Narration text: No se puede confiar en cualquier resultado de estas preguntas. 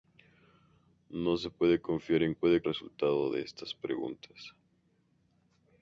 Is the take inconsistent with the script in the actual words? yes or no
yes